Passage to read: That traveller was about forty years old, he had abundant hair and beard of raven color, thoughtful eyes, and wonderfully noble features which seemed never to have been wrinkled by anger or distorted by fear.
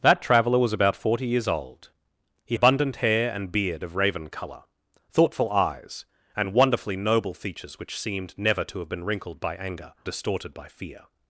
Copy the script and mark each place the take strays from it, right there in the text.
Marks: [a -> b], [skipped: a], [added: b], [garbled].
That traveller was about forty years old, he [skipped: had] abundant hair and beard of raven color, thoughtful eyes, and wonderfully noble features which seemed never to have been wrinkled by anger [skipped: or] distorted by fear.